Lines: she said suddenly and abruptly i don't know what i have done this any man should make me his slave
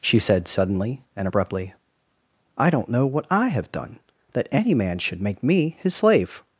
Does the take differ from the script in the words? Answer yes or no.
yes